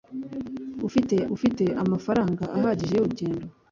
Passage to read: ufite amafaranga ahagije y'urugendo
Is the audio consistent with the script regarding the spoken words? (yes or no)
no